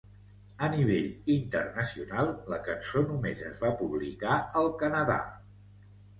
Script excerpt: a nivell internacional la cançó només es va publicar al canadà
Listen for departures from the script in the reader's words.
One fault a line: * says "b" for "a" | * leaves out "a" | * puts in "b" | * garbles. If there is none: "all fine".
all fine